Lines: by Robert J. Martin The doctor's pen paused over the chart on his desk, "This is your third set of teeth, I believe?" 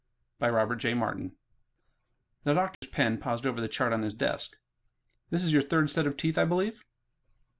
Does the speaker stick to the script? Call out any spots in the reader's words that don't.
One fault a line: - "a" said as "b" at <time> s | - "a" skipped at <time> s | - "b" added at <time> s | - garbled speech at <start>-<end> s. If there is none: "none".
none